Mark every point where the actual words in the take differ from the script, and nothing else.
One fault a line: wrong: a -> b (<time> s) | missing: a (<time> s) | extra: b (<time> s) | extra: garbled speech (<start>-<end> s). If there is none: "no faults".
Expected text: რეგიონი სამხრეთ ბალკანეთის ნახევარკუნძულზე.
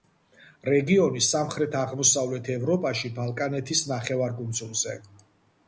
extra: აღმოსავლეთ ევროპაში (1.8 s)